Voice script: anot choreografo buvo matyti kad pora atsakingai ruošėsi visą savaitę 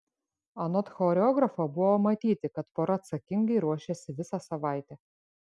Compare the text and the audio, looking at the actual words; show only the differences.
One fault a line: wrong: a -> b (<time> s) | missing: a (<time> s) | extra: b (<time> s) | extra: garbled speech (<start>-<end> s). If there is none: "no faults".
no faults